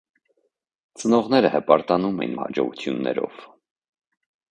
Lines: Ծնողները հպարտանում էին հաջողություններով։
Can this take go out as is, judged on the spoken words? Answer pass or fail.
pass